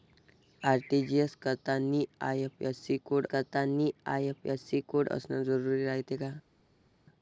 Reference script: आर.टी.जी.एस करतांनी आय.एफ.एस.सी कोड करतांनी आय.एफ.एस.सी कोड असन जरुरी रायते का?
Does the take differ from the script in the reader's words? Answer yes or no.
no